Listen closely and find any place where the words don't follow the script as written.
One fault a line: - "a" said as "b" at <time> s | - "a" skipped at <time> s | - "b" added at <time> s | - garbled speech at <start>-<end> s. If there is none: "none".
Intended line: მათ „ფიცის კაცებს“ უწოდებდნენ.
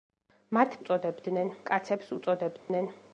- "ფიცის" said as "უწოდებდნენ" at 0.8 s